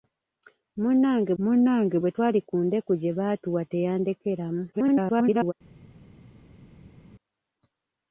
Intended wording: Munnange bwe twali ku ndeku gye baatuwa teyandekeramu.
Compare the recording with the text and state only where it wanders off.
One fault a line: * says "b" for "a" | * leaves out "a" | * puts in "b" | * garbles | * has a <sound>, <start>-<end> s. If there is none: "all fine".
* puts in "munnange"
* garbles